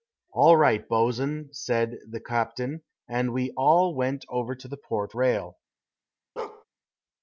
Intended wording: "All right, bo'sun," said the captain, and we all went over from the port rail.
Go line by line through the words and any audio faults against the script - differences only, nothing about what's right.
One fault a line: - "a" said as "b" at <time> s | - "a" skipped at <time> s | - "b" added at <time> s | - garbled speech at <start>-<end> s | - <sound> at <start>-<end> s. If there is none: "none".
- "from" said as "to" at 4.5 s
- bark at 6.4-6.6 s